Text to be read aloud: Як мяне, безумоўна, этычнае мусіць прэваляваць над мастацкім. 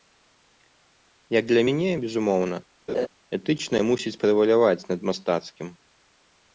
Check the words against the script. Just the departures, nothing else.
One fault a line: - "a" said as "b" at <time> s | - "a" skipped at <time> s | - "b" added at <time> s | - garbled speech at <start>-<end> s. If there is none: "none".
- "для" added at 1.5 s